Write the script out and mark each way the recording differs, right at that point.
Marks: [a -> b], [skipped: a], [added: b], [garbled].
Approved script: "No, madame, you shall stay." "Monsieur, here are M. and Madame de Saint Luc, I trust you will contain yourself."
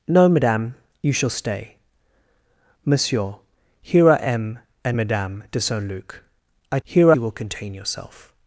"No, madame, you shall stay." "Monsieur, here are M. and Madame de Saint Luc, I [trust -> here] you will contain yourself."